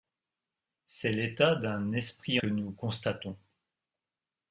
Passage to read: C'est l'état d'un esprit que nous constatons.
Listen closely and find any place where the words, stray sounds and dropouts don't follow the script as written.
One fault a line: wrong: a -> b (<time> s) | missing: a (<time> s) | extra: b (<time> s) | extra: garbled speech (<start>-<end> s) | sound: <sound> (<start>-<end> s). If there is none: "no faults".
no faults